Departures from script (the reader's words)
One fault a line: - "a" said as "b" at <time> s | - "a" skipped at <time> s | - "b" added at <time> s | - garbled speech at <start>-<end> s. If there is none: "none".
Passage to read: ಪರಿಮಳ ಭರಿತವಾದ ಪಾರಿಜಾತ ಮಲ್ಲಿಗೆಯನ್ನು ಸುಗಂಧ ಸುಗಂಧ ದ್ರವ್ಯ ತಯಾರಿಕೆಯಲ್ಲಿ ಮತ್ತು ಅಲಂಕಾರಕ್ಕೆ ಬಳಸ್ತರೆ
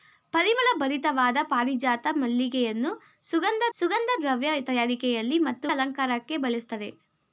none